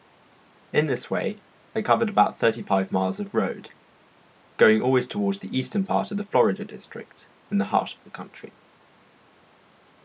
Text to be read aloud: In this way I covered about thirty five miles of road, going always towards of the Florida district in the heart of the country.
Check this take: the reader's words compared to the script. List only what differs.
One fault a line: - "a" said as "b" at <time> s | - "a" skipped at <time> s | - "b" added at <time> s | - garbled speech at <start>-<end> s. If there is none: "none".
- "the eastern part" added at 5.4 s